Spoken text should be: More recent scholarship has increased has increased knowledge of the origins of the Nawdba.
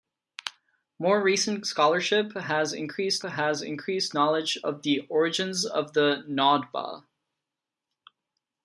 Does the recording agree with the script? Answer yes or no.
yes